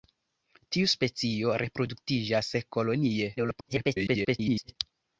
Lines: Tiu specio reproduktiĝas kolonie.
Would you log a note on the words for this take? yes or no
yes